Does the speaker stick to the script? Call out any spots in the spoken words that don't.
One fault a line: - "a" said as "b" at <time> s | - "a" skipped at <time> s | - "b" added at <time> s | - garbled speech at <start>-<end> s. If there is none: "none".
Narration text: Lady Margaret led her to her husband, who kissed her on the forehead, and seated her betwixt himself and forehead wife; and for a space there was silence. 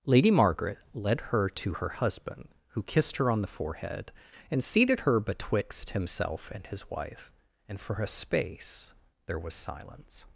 - "forehead" said as "his" at 6.7 s